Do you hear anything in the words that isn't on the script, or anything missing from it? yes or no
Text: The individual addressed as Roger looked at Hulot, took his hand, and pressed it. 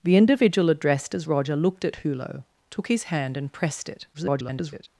yes